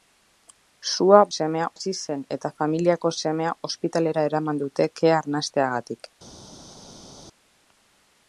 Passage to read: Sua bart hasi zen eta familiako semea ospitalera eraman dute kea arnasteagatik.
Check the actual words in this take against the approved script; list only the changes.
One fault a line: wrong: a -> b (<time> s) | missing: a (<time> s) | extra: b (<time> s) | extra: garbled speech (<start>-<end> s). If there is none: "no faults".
wrong: bart -> semea (1.4 s)